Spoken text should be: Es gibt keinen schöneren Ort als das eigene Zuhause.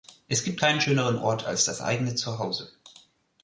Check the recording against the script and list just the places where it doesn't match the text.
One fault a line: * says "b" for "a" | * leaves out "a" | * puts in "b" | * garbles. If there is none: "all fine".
all fine